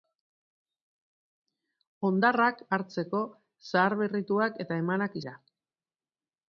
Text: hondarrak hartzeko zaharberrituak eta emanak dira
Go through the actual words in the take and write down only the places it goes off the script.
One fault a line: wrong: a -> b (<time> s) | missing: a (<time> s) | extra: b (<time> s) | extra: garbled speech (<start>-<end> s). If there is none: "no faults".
no faults